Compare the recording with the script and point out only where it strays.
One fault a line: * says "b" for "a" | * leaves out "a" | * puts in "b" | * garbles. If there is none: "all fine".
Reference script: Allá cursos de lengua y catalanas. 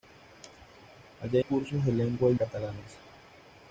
all fine